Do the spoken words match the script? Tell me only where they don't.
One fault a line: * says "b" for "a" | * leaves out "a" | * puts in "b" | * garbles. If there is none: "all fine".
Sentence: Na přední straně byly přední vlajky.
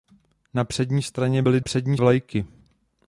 all fine